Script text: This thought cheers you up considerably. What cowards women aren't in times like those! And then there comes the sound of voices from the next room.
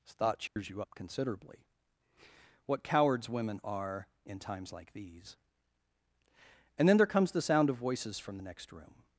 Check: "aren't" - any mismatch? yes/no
yes